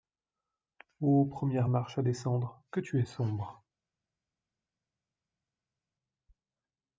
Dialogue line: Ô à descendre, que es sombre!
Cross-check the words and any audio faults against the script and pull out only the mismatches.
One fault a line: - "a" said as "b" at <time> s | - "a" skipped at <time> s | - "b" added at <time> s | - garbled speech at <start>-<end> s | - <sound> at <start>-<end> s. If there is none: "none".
- "première marche" added at 1.3 s
- "tu" added at 2.8 s